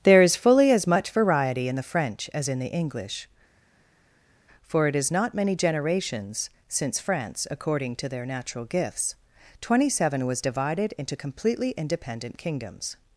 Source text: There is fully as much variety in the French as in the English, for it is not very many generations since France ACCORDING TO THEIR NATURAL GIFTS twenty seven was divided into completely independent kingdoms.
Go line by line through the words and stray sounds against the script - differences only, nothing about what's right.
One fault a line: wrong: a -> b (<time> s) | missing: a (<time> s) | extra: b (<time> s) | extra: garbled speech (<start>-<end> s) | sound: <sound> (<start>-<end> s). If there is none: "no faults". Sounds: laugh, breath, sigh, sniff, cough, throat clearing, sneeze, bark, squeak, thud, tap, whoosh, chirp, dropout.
missing: very (5.3 s)